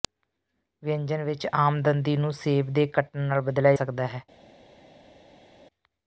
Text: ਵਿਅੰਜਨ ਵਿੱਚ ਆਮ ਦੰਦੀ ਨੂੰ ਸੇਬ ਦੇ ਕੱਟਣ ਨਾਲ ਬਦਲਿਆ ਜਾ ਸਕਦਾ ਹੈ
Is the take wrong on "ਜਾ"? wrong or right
wrong